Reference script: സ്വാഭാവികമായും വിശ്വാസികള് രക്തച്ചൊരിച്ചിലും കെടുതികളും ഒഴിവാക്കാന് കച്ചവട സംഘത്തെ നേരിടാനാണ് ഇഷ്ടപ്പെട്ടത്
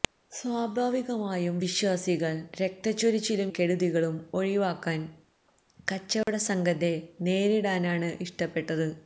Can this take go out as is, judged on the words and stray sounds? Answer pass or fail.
fail